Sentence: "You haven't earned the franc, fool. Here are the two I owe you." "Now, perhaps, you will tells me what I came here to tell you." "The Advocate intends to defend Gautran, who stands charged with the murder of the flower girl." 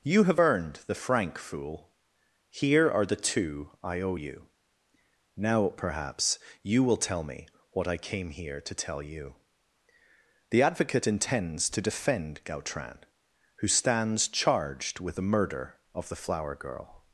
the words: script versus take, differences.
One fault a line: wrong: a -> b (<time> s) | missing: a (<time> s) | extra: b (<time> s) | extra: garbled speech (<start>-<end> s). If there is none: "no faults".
wrong: haven't -> have (0.2 s)
wrong: tells -> tell (7.0 s)